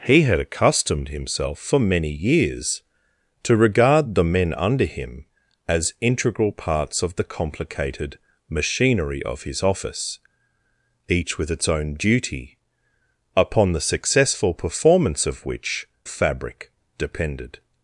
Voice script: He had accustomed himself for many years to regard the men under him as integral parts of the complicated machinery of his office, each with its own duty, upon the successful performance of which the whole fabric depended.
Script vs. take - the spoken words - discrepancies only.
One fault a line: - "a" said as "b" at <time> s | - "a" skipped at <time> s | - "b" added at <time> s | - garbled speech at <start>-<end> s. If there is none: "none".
- "the whole" skipped at 15.9 s